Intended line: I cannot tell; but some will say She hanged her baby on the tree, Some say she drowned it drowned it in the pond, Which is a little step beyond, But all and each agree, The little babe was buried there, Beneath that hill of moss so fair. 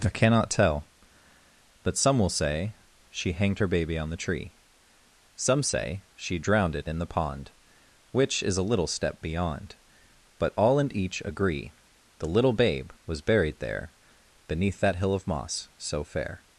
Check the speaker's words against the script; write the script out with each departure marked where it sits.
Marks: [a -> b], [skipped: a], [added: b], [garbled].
I cannot tell; but some will say She hanged her baby on the tree, Some say she drowned it [skipped: drowned it] in the pond, Which is a little step beyond, But all and each agree, The little babe was buried there, Beneath that hill of moss so fair.